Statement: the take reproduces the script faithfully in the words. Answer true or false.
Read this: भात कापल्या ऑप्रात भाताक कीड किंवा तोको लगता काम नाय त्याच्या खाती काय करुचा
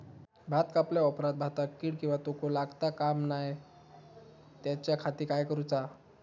true